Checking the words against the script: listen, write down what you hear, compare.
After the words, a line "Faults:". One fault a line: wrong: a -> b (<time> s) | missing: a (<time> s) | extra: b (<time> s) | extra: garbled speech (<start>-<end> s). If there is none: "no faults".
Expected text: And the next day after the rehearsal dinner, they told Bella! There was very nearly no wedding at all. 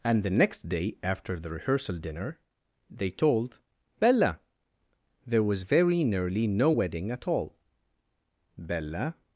And the next day after the rehearsal dinner, they told Bella! There was very nearly no wedding at all. Bella
Faults:
extra: Bella (8.6 s)